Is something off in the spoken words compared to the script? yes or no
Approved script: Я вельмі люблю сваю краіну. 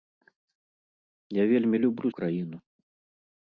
yes